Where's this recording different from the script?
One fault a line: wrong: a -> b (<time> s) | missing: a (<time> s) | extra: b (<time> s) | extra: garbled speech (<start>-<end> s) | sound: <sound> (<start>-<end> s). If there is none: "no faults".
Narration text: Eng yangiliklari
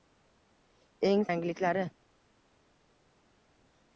no faults